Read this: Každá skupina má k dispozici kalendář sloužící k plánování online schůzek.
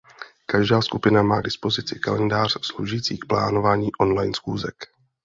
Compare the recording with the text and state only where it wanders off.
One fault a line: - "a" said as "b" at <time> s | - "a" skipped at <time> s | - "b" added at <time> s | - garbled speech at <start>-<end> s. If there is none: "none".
none